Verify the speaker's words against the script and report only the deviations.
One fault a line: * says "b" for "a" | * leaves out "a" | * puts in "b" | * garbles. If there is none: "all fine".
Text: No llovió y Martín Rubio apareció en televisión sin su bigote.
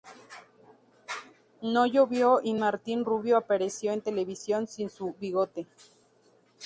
all fine